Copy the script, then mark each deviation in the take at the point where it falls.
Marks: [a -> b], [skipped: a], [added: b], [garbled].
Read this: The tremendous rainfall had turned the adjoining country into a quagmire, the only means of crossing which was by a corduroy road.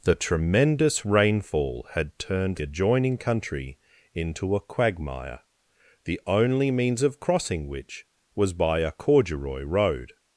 The tremendous rainfall had turned [skipped: the] adjoining country into a quagmire, the only means of crossing which was by a corduroy road.